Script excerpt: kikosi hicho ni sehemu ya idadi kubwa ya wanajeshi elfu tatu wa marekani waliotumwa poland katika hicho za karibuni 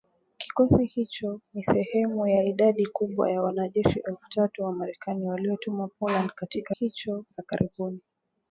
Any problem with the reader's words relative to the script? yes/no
no